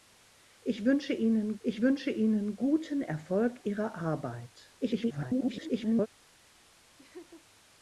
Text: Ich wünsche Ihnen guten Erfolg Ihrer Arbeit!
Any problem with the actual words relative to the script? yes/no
yes